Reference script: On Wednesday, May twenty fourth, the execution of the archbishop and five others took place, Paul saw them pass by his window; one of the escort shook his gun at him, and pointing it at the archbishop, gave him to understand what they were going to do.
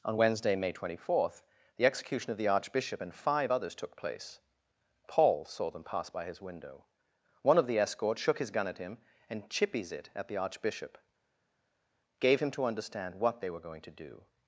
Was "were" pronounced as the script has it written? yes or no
yes